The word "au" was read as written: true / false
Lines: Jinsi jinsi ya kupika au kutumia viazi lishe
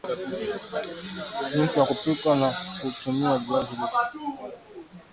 false